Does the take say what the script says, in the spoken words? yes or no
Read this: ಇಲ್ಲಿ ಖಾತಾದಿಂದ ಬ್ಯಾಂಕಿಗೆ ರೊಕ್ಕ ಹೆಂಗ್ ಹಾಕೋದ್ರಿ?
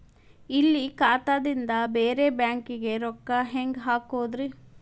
no